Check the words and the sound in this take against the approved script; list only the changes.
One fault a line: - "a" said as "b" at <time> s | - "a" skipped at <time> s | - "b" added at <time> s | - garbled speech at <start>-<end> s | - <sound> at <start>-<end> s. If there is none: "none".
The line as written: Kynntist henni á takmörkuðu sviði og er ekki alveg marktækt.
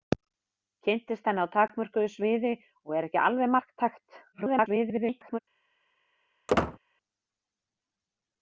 - garbled speech at 4.3-5.4 s
- squeak at 6.5-6.8 s